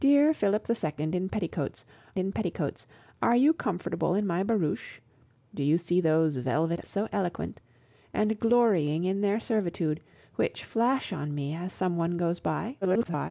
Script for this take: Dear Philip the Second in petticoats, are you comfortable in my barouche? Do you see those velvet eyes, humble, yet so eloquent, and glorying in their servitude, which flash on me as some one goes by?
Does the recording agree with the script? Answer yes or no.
no